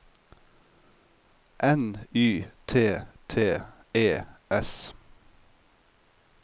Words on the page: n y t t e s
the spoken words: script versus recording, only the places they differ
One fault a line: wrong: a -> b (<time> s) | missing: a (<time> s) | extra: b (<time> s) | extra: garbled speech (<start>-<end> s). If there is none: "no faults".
no faults